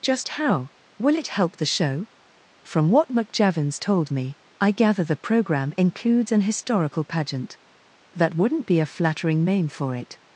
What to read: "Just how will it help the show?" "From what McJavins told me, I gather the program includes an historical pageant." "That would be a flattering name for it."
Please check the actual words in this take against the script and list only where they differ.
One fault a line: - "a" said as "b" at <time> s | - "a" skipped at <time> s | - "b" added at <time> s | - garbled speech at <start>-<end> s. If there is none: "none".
- "would" said as "wouldn't" at 8.3 s